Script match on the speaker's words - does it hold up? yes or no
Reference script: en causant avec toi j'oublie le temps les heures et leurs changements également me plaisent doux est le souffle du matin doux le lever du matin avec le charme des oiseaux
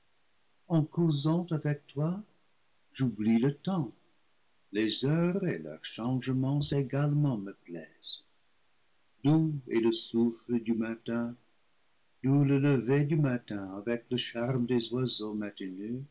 yes